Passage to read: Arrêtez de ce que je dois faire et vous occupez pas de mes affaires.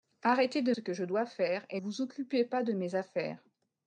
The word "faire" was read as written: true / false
true